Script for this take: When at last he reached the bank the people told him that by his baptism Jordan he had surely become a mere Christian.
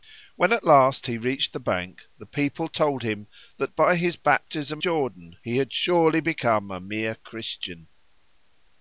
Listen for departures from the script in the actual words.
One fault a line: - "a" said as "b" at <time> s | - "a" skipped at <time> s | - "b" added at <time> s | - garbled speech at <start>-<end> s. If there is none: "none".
none